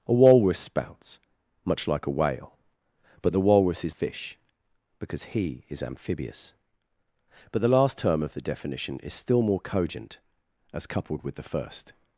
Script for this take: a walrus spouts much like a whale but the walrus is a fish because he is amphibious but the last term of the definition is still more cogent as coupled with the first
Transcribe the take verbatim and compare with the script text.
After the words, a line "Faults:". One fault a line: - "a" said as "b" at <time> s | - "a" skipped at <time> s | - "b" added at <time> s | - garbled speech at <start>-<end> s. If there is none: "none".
a walrus spouts much like a whale but the walrus is a fish because he is amphibious but the last term of the definition is still more cogent as coupled with the first
Faults:
none